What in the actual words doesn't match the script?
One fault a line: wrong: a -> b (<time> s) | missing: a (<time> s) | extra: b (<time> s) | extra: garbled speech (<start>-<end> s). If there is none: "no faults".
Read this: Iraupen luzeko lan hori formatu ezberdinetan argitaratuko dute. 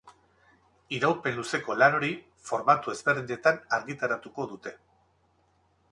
no faults